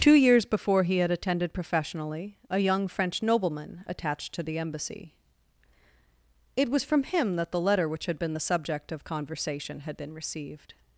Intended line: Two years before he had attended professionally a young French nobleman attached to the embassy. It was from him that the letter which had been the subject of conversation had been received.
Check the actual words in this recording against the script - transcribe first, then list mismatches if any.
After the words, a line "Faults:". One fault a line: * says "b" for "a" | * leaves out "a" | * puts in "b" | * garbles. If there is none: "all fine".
Two years before he had attended professionally a young French nobleman attached to the embassy. It was from him that the letter which had been the subject of conversation had been received.
Faults:
all fine